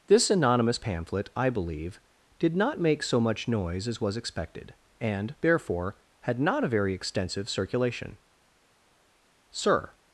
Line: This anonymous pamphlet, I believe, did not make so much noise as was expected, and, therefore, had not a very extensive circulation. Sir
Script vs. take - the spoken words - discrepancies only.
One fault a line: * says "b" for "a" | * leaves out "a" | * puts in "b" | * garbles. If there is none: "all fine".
all fine